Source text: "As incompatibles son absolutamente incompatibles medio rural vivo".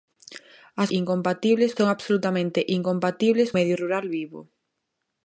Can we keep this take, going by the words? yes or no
yes